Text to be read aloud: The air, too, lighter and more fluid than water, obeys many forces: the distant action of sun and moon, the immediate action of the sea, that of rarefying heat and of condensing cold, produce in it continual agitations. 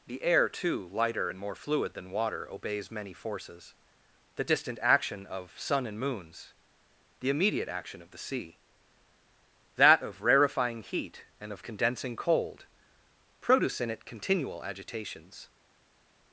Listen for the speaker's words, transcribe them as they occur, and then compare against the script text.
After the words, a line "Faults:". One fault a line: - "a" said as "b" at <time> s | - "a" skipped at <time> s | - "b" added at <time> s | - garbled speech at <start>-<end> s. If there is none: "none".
The air, too, lighter and more fluid than water, obeys many forces: the distant action of sun and moons, the immediate action of the sea, that of rarefying heat and of condensing cold, produce in it continual agitations.
Faults:
- "moon" said as "moons" at 6.0 s